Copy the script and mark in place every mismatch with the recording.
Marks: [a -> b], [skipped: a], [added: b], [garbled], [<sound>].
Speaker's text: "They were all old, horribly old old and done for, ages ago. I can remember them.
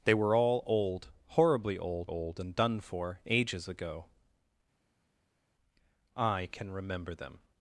"They were all old, horribly old old and done for, ages ago. I can remember them.